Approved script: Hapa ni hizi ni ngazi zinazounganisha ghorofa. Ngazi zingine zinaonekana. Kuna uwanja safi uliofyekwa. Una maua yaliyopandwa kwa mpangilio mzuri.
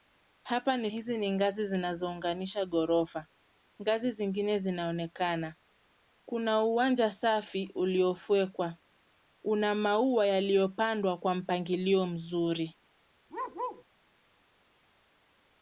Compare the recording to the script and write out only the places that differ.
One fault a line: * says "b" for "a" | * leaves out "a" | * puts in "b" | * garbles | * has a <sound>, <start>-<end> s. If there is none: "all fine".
* has a bark, 13.3-13.8 s